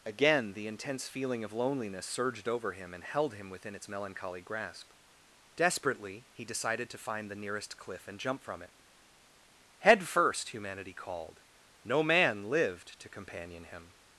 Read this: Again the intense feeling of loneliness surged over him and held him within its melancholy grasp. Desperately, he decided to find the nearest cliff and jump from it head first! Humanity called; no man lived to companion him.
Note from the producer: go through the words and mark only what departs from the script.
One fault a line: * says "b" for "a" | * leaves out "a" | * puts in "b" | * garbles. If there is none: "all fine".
all fine